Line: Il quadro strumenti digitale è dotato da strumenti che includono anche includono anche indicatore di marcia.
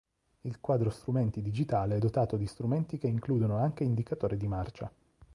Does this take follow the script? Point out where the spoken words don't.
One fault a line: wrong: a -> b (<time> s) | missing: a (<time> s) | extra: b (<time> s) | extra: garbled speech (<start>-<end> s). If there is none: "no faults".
wrong: da -> di (2.4 s)
missing: includono anche (3.8 s)